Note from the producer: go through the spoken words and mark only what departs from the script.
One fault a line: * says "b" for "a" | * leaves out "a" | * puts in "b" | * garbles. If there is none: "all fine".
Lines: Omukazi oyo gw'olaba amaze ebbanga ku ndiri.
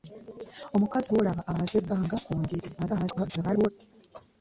* leaves out "oyo"
* garbles